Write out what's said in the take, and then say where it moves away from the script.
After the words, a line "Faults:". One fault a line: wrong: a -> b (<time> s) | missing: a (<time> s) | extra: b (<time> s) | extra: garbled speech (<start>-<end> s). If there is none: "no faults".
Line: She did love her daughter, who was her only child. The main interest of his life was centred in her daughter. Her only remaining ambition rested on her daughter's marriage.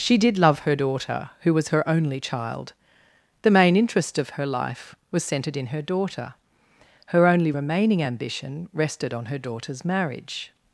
She did love her daughter, who was her only child. The main interest of her life was centred in her daughter. Her only remaining ambition rested on her daughter's marriage.
Faults:
wrong: his -> her (4.3 s)